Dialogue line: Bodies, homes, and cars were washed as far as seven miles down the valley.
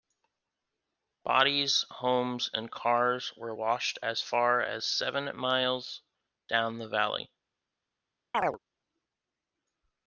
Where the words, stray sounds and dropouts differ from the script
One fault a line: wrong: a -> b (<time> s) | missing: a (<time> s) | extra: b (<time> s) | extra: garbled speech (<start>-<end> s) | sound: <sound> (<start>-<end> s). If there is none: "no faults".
sound: chirp (8.3-8.6 s)